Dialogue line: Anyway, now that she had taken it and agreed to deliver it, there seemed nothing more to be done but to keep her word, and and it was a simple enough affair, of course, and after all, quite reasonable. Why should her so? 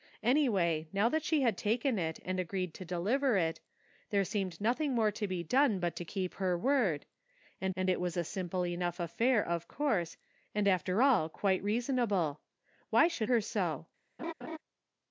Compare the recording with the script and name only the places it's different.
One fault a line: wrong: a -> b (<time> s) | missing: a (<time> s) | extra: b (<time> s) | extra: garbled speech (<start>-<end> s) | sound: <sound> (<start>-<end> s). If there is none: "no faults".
sound: laugh (14.2-14.6 s)